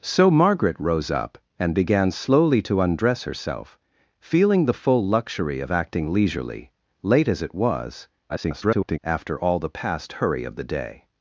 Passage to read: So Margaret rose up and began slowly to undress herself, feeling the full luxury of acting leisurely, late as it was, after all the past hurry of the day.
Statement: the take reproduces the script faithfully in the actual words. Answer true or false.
false